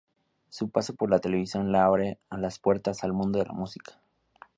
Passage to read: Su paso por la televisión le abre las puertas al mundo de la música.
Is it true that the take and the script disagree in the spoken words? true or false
false